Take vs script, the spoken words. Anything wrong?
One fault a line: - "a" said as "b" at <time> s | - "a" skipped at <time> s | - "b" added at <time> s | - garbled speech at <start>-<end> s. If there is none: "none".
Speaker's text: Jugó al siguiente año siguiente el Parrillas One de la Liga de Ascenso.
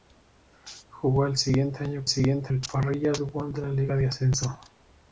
none